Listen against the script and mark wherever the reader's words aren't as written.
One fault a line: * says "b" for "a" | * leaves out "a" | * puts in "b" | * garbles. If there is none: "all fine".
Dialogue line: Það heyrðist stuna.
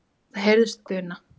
all fine